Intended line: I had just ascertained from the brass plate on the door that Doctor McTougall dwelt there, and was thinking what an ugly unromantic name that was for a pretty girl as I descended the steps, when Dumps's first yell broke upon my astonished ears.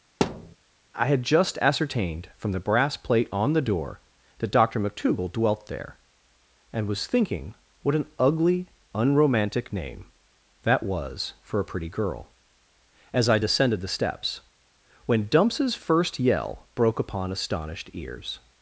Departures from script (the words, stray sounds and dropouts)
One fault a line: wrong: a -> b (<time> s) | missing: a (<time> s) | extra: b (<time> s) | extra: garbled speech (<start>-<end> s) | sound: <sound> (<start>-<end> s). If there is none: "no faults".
sound: thud (0.2-0.6 s)
missing: my (17.3 s)